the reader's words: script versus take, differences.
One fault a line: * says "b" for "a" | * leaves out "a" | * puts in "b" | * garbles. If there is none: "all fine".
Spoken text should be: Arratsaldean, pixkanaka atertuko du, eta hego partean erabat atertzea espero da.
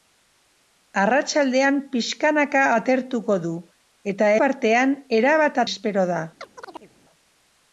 * leaves out "hego"
* leaves out "atertzea"